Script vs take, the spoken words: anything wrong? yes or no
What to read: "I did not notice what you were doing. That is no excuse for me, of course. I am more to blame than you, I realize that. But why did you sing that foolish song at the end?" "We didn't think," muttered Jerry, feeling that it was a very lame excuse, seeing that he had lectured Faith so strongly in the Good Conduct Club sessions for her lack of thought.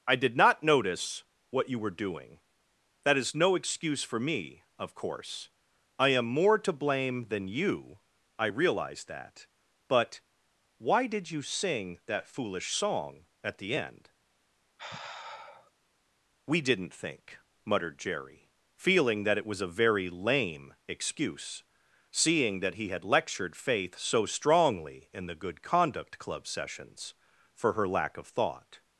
no